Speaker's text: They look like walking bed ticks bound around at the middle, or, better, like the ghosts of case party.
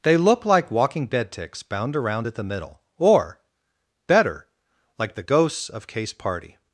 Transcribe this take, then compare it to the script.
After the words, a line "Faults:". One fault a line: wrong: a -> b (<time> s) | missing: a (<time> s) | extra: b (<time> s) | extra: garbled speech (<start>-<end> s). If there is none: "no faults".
They look like walking bed ticks bound around at the middle, or, better, like the ghosts of case party.
Faults:
no faults